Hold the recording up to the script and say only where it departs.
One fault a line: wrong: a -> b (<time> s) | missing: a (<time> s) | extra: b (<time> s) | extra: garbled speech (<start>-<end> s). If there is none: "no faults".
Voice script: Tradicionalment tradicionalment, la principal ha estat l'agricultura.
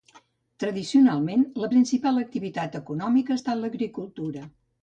missing: tradicionalment (1.4 s)
extra: activitat econòmica (2.2 s)